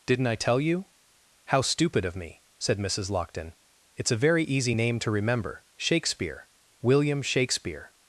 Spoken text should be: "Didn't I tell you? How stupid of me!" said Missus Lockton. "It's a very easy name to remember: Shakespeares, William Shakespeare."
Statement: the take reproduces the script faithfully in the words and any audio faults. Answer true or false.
false